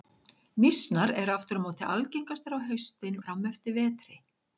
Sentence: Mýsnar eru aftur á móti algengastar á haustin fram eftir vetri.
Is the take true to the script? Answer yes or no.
yes